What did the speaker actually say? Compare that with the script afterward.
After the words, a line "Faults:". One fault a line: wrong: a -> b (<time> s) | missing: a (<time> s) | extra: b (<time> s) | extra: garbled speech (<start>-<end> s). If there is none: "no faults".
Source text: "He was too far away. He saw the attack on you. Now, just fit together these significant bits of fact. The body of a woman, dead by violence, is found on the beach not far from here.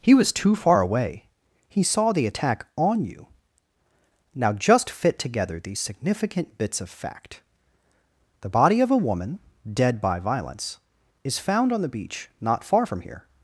"He was too far away. He saw the attack on you. Now, just fit together these significant bits of fact. The body of a woman, dead by violence, is found on the beach not far from here.
Faults:
no faults